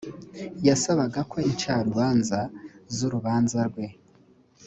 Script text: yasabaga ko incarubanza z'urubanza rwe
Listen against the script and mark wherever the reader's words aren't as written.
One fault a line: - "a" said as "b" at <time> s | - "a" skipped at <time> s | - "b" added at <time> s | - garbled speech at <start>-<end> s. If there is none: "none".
none